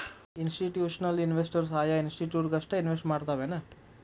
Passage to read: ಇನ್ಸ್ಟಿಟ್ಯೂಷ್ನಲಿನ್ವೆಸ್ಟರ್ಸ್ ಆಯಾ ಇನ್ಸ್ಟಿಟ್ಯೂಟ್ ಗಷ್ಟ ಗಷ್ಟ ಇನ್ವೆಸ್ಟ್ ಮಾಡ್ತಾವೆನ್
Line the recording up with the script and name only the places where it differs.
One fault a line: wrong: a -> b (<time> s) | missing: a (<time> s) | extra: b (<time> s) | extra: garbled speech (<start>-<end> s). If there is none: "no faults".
missing: ಗಷ್ಟ (2.7 s)